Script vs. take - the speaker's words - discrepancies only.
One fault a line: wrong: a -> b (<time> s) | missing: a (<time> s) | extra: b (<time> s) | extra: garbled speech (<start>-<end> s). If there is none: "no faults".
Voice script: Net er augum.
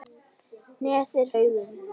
no faults